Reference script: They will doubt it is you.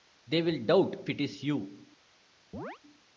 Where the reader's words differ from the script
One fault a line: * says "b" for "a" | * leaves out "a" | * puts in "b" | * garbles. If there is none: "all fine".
all fine